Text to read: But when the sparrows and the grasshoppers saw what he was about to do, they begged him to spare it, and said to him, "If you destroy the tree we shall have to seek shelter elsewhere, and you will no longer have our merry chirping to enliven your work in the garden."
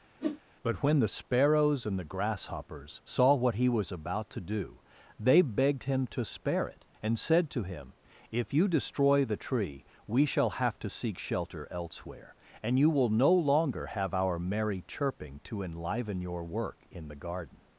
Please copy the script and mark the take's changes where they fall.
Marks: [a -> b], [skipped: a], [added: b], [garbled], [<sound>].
[whoosh] But when the sparrows and the grasshoppers saw what he was about to do, they begged him to spare it, and said to him, "If you destroy the tree we shall have to seek shelter elsewhere, and you will no longer have our merry chirping to enliven your work in the garden."